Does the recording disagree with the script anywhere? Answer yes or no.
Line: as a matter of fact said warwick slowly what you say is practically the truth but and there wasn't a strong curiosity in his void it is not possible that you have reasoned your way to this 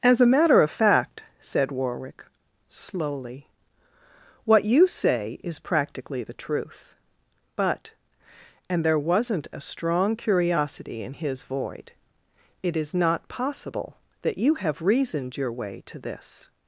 no